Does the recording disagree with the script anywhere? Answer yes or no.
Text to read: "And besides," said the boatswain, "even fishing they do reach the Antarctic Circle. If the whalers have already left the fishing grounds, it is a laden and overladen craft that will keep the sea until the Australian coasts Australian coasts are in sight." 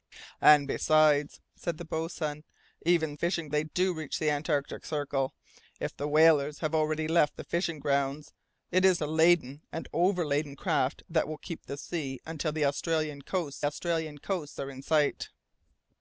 no